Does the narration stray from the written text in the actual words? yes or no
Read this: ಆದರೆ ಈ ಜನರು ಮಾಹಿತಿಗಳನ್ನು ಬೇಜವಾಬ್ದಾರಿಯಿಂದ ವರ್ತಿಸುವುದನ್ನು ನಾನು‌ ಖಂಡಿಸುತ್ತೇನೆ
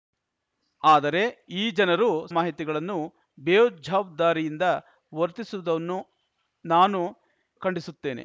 no